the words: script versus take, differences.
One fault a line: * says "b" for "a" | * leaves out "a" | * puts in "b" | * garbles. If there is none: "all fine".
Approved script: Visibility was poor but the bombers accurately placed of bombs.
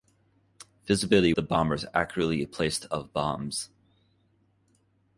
* leaves out "was poor but"